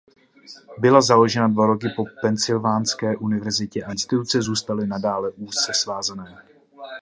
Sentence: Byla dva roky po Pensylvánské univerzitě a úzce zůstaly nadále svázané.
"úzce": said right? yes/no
no